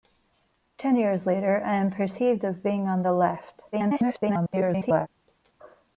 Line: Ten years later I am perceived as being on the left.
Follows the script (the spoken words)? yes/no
no